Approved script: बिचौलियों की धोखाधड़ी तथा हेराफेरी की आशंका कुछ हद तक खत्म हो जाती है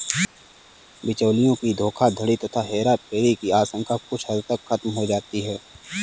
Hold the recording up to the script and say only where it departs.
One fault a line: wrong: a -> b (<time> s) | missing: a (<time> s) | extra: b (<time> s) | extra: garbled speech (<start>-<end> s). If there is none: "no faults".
no faults